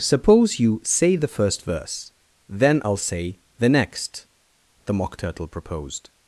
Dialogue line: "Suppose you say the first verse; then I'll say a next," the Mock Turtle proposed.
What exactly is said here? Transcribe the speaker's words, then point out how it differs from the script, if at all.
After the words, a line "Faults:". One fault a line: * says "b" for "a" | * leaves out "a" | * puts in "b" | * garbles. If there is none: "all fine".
"Suppose you say the first verse; then I'll say the next," the Mock Turtle proposed.
Faults:
* says "the" for "a"